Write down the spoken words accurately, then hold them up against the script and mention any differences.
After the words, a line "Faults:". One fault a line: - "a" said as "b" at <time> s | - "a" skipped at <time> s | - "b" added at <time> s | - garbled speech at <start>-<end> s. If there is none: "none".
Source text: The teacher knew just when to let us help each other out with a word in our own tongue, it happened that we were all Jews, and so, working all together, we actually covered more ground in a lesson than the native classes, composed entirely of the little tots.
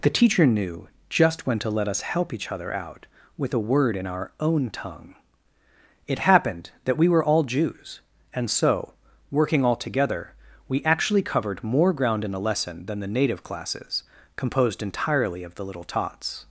The teacher knew just when to let us help each other out with a word in our own tongue, it happened that we were all Jews, and so, working all together, we actually covered more ground in a lesson than the native classes, composed entirely of the little tots.
Faults:
none